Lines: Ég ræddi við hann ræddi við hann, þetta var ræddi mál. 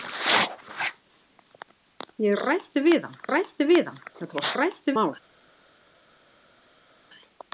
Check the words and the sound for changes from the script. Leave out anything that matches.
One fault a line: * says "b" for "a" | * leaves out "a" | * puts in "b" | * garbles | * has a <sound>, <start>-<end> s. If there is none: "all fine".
all fine